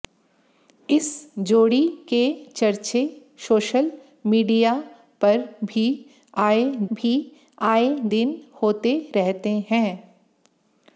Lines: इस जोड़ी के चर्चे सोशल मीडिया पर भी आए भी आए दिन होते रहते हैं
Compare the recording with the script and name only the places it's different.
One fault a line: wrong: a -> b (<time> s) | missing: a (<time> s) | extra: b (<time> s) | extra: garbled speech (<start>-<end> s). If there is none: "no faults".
no faults